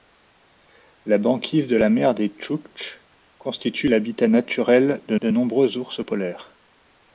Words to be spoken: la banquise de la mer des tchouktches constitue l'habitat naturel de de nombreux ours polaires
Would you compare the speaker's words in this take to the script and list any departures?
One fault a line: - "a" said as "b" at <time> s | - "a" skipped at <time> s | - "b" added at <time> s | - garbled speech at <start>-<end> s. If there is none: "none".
none